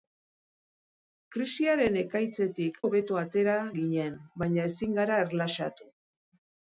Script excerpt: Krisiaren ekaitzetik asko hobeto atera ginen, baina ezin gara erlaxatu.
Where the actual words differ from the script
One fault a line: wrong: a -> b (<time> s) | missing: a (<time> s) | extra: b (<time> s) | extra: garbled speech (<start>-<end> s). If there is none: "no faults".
missing: asko (2.8 s)